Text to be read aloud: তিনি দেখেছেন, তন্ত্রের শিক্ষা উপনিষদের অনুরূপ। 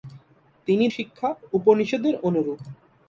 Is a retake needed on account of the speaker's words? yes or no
yes